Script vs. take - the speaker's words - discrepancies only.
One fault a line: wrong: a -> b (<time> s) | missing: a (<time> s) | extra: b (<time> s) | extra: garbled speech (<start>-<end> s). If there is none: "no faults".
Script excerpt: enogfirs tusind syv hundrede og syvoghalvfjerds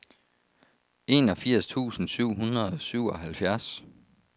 no faults